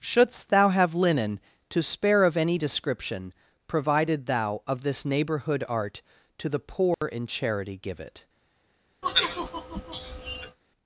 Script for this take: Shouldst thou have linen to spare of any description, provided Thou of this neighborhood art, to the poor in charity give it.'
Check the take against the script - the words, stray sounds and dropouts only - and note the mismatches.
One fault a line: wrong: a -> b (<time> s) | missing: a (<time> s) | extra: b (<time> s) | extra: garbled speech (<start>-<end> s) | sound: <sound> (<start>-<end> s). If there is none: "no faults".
sound: dropout (6.9-7.0 s)
sound: sigh (9.0-10.6 s)